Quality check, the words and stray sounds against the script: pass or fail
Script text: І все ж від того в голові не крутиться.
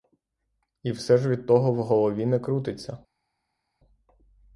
pass